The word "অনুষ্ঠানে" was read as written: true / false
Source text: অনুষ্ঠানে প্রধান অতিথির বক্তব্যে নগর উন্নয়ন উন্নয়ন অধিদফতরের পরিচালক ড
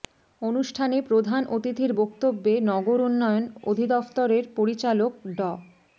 true